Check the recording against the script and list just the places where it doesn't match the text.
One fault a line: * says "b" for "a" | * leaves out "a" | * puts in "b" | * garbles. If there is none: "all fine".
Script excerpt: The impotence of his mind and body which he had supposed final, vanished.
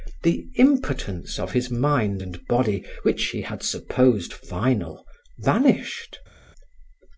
all fine